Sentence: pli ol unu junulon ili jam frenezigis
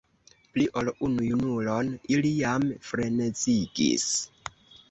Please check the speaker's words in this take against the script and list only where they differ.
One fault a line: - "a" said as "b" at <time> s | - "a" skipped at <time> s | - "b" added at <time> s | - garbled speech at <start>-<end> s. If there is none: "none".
none